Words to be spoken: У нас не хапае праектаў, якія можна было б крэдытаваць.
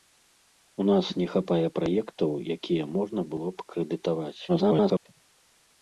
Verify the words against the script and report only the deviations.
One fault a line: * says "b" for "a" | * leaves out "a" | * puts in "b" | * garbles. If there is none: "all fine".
* garbles